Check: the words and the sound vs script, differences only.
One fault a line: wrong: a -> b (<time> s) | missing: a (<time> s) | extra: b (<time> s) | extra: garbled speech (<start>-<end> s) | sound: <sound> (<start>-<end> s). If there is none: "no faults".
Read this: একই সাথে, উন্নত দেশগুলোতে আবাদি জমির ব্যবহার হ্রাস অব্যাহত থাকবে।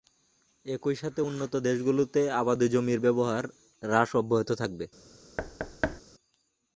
sound: thud (5.4-6.0 s)